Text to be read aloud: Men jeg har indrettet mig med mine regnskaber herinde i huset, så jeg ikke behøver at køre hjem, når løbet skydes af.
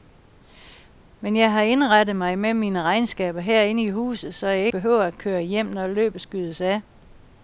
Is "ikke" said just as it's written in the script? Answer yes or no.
no